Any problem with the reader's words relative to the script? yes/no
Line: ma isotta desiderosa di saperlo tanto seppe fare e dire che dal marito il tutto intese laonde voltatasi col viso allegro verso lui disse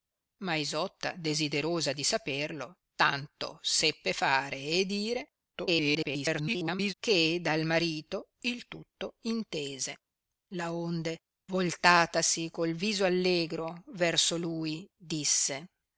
yes